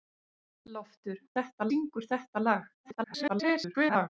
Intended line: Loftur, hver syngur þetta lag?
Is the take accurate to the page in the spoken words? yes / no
no